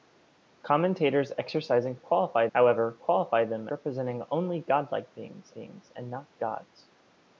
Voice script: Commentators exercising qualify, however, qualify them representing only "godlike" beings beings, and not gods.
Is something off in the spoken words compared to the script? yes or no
no